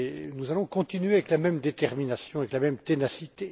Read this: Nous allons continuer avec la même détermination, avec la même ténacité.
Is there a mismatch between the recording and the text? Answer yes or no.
no